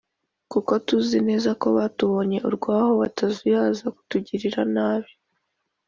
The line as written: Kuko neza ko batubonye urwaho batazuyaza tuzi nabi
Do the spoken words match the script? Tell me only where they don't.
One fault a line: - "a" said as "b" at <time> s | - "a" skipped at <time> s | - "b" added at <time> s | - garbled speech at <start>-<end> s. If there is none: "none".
- "tuzi" added at 0.9 s
- "tuzi" said as "kutugirira" at 3.9 s